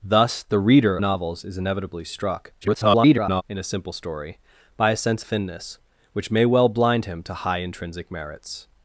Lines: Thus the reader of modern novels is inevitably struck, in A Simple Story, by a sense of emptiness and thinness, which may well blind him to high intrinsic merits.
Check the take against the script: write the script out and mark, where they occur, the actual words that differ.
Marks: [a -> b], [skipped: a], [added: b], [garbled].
Thus the reader [skipped: of modern] novels is inevitably struck, [garbled] in A Simple Story, by a sense [skipped: of emptiness and] thinness, which may well blind him to high intrinsic merits.